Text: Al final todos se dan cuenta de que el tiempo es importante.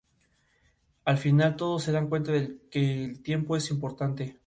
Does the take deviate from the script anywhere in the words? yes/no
no